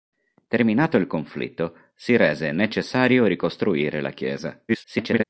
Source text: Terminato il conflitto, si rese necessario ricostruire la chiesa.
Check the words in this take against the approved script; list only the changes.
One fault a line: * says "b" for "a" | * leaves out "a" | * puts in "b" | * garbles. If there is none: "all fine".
* garbles